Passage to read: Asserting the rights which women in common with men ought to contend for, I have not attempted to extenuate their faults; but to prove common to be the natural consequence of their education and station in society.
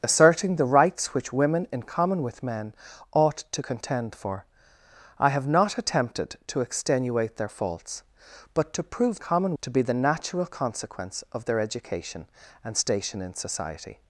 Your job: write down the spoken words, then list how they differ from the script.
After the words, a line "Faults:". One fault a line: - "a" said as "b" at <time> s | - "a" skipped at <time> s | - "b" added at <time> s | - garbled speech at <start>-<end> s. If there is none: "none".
Asserting the rights which women in common with men ought to contend for, I have not attempted to extenuate their faults; but to prove common to be the natural consequence of their education and station in society.
Faults:
none